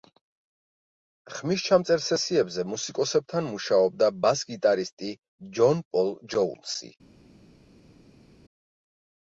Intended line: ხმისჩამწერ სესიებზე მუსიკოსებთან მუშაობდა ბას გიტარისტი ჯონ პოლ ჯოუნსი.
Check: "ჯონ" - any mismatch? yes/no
no